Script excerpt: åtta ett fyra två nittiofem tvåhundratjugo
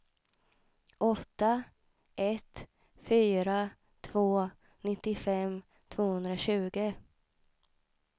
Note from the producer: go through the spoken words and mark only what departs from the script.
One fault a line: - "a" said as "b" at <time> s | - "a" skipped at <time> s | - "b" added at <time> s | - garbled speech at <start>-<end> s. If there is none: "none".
none